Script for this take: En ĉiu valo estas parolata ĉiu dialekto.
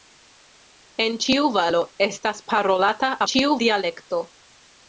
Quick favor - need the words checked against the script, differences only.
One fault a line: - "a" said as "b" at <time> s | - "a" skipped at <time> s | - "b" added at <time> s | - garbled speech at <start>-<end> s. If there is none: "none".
none